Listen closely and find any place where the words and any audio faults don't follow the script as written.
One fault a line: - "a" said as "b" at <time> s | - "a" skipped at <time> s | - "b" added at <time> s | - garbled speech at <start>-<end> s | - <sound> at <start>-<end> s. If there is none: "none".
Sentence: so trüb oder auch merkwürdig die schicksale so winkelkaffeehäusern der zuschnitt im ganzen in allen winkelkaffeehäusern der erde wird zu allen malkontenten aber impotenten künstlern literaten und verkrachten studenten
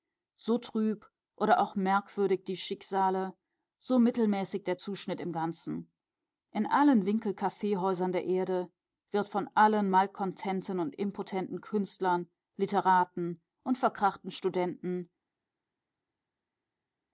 - "winkelkaffeehäusern" said as "mittelmäßig" at 4.0 s
- "zu" said as "von" at 9.3 s
- "aber" said as "und" at 10.8 s